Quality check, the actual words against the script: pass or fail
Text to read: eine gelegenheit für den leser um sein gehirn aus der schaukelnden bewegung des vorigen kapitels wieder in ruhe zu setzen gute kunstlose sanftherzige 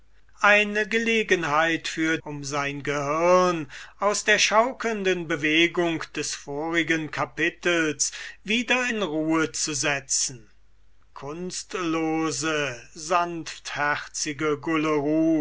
fail